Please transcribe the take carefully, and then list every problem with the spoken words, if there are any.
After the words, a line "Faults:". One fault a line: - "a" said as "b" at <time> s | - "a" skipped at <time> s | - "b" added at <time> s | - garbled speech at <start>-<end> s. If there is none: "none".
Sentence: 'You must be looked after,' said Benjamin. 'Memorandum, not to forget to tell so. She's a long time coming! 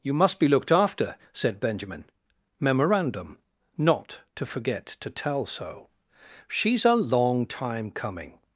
'You must be looked after,' said Benjamin. 'Memorandum, not to forget to tell so. She's a long time coming!
Faults:
none